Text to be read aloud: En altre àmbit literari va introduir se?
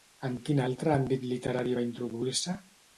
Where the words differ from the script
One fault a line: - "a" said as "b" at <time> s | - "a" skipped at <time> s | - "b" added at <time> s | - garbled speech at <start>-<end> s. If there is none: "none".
- "quin" added at 0.5 s